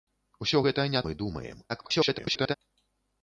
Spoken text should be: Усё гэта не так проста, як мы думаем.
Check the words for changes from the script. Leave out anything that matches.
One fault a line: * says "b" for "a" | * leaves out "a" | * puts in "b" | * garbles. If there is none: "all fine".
* leaves out "так проста як"
* garbles